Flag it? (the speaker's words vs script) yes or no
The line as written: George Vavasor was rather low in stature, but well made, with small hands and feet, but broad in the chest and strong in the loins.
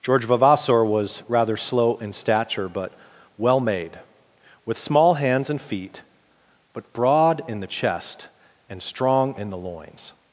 yes